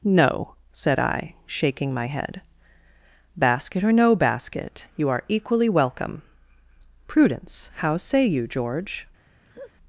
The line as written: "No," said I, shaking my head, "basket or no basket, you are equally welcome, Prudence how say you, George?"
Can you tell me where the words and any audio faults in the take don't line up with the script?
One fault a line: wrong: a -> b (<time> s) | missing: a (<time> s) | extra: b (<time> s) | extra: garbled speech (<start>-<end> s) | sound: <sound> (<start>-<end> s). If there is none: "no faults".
sound: laugh (9.4-9.7 s)